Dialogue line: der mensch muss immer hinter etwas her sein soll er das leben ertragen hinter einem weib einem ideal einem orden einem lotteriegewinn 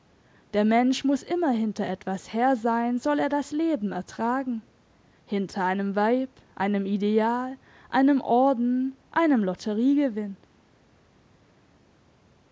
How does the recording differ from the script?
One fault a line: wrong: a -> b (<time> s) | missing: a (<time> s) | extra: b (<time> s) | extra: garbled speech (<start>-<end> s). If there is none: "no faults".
no faults